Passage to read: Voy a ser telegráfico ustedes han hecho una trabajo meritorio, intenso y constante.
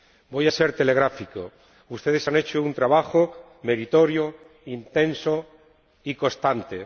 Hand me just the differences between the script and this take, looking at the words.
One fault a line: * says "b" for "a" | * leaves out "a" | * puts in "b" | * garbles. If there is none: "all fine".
* says "un" for "una"